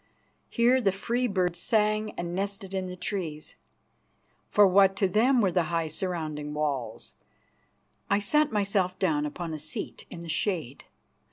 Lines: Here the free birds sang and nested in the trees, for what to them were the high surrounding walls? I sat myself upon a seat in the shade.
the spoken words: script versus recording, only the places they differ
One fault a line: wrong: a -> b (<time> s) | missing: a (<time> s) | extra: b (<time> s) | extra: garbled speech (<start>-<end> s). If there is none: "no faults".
extra: down (9.0 s)